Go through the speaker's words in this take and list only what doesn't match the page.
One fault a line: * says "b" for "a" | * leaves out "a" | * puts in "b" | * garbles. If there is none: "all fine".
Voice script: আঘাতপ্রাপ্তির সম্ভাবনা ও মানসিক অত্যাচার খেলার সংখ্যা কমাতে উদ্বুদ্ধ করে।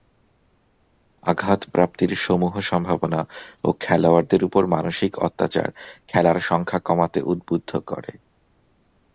* puts in "সমূহ"
* puts in "খেলোয়াড়দের উপর"